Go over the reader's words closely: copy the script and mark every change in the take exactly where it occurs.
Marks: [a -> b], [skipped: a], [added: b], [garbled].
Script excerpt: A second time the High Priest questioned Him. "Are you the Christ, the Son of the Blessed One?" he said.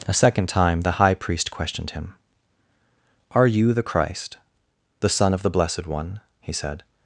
A second time the High Priest questioned Him. "Are you the Christ, the Son of the Blessed One?" he said.